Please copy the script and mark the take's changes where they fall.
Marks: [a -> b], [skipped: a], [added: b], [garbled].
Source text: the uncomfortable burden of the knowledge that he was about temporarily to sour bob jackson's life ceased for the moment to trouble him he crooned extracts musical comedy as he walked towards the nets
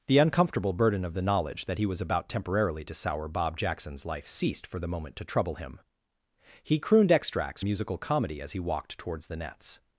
the uncomfortable burden of the knowledge that he was about temporarily to sour bob jackson's life ceased for the moment to trouble him he crooned extracts musical comedy as he walked towards the nets